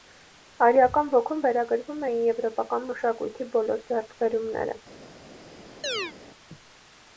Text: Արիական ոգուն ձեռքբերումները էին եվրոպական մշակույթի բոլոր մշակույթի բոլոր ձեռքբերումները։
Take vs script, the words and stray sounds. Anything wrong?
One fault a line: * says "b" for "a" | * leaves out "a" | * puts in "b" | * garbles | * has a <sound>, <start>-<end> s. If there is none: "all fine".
* says "վերագրվում" for "ձեռքբերումները"
* leaves out "մշակույթի բոլոր"
* has a chirp, 5.8-6.1 s